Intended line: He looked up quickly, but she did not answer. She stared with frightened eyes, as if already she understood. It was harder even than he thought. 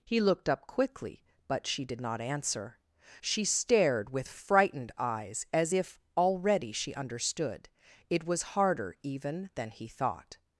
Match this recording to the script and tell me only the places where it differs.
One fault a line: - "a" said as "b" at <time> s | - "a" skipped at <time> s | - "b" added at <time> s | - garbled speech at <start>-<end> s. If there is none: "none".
none